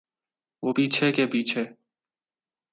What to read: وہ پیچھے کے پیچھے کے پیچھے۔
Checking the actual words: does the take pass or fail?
fail